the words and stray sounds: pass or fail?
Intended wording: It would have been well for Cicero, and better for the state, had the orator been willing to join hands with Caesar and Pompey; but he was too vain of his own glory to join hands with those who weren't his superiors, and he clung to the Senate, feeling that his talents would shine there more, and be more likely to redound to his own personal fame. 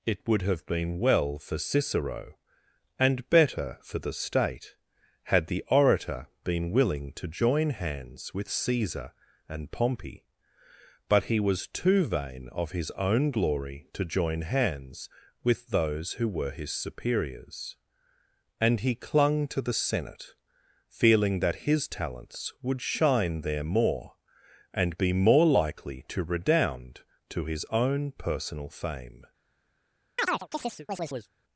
fail